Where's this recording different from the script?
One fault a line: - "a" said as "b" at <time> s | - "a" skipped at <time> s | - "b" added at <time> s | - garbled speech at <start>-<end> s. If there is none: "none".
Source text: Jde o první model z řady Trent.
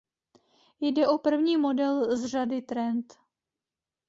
none